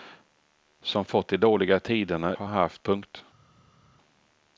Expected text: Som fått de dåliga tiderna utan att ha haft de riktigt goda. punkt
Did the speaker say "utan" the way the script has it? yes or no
no